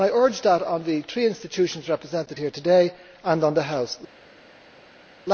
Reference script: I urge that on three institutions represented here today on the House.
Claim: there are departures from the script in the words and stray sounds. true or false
true